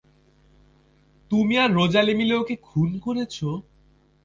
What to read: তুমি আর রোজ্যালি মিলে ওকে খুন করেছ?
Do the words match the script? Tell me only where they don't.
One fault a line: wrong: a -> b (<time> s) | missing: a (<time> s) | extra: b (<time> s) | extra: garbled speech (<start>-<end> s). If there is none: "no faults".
no faults